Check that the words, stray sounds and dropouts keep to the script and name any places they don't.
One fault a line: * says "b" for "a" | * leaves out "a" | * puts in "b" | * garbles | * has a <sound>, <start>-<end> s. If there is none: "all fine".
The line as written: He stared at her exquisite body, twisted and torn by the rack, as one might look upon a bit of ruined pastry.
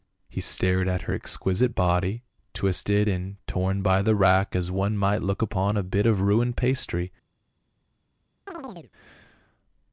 * has a chirp, 8.5-8.9 s